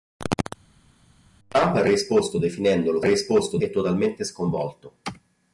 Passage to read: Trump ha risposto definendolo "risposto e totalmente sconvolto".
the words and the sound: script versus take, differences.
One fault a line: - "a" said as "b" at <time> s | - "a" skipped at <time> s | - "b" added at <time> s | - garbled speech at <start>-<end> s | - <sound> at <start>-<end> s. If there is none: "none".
none